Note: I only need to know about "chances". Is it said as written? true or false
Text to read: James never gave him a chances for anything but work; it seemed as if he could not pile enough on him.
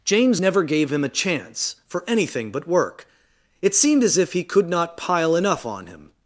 false